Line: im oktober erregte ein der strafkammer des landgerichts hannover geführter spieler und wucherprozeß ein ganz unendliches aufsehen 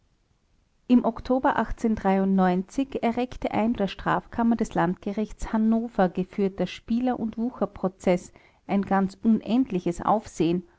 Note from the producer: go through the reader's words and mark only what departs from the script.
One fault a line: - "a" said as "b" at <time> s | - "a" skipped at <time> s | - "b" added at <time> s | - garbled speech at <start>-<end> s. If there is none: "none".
none